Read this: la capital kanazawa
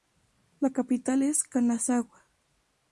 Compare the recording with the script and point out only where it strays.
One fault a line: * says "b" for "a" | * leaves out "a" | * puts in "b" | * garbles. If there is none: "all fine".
* puts in "es"